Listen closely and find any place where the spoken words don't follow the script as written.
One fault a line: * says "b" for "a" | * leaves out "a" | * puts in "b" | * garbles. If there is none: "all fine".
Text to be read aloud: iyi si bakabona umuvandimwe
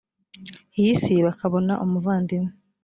all fine